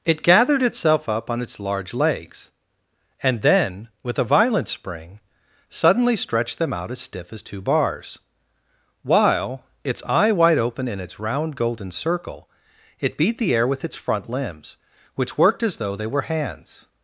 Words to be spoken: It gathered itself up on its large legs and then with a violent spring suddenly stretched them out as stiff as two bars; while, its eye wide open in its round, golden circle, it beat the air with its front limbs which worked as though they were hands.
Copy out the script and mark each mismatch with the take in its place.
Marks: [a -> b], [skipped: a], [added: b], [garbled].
It gathered itself up on its large legs and then with a violent spring suddenly stretched them out as stiff as two bars; while, its eye wide open in its round, golden circle, it beat the air with its front limbs which worked as though they were hands.